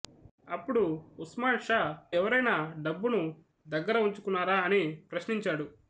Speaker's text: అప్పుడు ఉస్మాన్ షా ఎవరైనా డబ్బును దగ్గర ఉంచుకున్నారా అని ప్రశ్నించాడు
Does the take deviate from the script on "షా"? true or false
false